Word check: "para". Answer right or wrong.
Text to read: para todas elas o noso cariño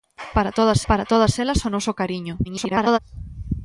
right